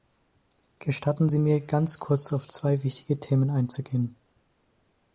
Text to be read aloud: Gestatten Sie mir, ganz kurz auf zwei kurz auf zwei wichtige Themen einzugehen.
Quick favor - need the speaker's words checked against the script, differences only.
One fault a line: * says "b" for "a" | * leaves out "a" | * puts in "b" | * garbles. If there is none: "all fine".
* leaves out "kurz auf zwei"